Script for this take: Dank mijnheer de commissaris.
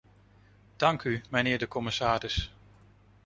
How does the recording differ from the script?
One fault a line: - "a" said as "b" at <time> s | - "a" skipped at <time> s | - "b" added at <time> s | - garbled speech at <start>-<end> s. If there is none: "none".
- "u" added at 1.0 s